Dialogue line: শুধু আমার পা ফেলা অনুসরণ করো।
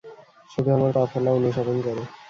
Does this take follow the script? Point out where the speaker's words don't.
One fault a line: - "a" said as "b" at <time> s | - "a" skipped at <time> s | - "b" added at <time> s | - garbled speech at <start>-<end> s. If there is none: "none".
none